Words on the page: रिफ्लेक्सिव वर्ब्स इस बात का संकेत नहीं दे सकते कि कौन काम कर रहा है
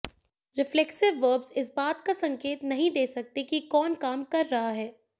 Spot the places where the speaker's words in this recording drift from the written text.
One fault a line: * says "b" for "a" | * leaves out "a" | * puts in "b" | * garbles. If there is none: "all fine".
all fine